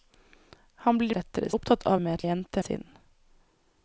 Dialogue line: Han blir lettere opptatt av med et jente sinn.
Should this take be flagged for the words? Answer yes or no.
no